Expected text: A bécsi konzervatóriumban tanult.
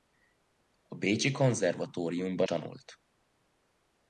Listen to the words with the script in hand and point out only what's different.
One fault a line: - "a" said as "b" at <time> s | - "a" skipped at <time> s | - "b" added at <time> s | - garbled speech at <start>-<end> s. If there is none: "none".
none